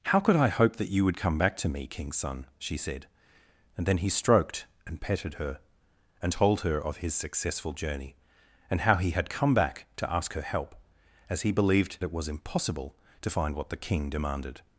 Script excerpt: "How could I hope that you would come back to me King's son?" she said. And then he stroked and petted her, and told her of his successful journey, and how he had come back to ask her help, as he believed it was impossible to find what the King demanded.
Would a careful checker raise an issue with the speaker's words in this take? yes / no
no